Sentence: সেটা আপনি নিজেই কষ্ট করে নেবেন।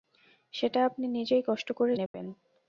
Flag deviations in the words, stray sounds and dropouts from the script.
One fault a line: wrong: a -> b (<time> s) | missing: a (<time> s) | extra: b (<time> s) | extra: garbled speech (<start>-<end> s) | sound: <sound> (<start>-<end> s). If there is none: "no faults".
sound: dropout (2.1-2.1 s)